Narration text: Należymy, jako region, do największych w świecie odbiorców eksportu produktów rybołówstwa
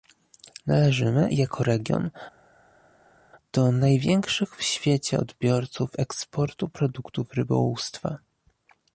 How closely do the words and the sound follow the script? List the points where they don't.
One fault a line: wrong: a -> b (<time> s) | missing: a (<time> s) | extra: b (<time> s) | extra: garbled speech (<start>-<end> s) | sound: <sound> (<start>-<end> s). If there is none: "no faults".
no faults